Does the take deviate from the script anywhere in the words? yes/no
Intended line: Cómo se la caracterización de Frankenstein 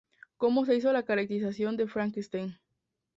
yes